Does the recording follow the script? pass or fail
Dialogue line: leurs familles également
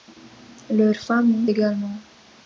pass